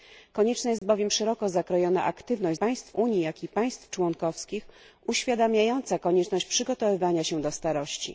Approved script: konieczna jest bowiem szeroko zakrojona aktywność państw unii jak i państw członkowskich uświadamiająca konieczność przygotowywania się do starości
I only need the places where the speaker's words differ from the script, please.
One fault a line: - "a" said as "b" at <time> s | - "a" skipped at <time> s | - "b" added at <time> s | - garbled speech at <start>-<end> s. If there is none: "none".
none